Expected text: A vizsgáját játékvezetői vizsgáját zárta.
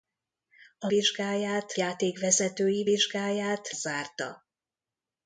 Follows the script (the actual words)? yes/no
yes